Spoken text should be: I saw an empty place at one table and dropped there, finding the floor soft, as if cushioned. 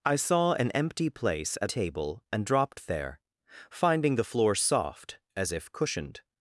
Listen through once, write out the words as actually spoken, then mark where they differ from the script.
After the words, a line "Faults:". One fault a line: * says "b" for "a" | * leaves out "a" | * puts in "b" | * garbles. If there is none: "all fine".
I saw an empty place at table and dropped there, finding the floor soft, as if cushioned.
Faults:
* leaves out "one"